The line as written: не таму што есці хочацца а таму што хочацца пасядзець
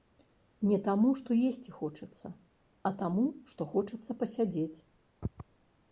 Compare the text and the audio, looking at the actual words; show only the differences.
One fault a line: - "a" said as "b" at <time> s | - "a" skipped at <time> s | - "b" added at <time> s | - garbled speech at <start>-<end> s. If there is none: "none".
none